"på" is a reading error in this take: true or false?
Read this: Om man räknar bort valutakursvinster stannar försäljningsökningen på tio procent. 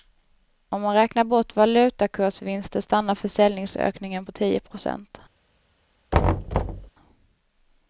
false